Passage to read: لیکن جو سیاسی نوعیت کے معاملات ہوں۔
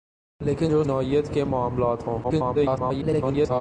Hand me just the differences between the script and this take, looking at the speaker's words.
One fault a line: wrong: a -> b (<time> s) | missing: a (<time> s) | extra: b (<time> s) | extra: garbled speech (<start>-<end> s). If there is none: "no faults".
missing: سیاسی (0.8 s)
extra: garbled speech (2.2-3.6 s)